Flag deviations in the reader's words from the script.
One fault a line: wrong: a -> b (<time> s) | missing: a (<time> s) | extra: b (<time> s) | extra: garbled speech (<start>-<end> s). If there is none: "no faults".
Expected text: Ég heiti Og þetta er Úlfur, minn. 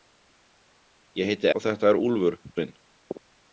no faults